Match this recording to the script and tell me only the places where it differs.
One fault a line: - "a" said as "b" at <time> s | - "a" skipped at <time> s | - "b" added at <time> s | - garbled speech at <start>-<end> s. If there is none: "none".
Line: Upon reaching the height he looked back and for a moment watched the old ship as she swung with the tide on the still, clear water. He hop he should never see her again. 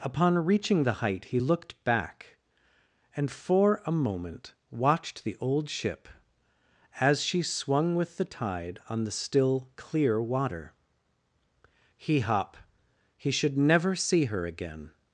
none